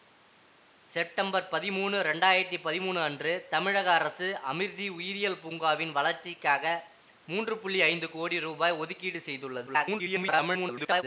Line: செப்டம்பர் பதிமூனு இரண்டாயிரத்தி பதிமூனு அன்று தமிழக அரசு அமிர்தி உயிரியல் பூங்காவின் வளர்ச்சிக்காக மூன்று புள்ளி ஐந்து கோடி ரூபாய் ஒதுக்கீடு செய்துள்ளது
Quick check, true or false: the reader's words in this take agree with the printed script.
false